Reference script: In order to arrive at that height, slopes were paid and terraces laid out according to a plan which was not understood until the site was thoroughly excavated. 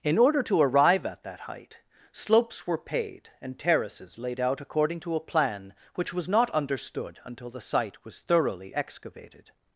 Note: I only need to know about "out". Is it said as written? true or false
true